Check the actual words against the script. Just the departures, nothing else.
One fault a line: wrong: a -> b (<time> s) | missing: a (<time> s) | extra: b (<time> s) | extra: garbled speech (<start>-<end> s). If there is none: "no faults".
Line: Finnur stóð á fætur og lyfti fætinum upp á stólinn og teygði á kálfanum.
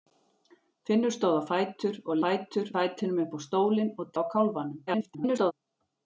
wrong: lyfti -> fætur (2.2 s)
missing: teygði (4.2 s)
extra: garbled speech (4.9-5.5 s)